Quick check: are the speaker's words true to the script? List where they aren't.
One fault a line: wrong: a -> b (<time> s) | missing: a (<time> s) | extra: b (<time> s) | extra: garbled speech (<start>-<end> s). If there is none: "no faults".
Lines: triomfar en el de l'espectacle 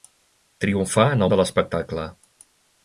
no faults